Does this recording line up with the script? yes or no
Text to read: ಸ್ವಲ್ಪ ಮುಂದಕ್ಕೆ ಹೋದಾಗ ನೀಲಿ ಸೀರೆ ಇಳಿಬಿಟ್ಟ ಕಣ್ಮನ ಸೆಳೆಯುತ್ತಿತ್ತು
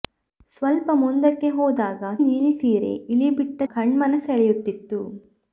yes